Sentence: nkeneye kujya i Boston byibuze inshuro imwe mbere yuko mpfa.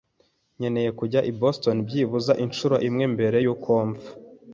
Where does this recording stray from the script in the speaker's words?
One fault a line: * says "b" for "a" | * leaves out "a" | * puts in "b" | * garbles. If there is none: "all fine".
all fine